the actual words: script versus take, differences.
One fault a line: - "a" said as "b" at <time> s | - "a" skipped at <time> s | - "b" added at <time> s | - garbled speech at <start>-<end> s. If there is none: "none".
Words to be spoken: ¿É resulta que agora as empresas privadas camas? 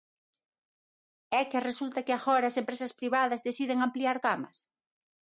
- "que" added at 1.5 s
- "deciden ampliar" added at 3.5 s